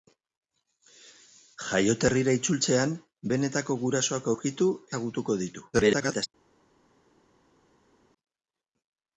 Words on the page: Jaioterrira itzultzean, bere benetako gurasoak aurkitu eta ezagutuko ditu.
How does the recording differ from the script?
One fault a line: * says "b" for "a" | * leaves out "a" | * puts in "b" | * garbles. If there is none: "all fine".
* leaves out "bere"
* leaves out "eta"
* garbles